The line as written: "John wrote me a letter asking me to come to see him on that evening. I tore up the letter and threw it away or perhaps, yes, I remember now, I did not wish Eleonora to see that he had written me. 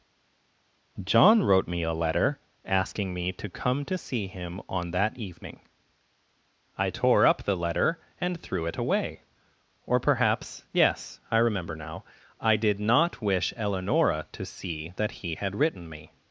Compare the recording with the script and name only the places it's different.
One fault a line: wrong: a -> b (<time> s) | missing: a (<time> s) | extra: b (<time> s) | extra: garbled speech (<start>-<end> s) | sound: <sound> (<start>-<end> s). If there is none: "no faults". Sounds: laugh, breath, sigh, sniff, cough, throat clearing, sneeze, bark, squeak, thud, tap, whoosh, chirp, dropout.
no faults